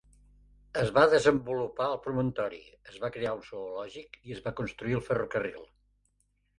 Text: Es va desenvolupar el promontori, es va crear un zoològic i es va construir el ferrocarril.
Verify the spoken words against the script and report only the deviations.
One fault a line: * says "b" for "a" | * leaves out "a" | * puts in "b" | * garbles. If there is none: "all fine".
all fine